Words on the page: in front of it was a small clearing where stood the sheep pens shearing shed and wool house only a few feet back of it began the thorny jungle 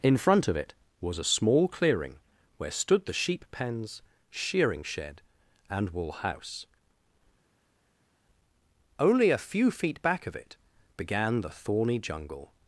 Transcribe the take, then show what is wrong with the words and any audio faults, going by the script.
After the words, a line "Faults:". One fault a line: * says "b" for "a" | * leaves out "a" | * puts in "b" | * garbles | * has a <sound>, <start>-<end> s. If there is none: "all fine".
in front of it was a small clearing where stood the sheep pens shearing shed and wool house only a few feet back of it began the thorny jungle
Faults:
all fine